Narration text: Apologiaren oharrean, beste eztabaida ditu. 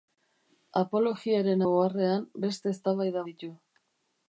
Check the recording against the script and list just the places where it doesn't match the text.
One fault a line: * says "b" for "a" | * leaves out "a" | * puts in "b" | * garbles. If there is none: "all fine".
all fine